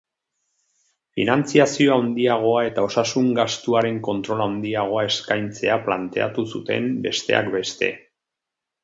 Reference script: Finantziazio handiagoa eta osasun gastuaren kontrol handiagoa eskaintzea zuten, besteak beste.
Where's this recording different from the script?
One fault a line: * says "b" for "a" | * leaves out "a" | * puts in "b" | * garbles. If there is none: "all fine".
* puts in "planteatu"